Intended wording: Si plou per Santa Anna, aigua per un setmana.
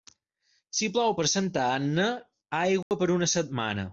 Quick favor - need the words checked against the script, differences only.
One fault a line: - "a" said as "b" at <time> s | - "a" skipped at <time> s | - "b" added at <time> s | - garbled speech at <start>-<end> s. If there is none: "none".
- "un" said as "una" at 3.1 s